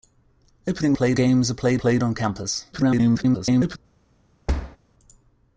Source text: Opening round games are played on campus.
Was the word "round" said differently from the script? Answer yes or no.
yes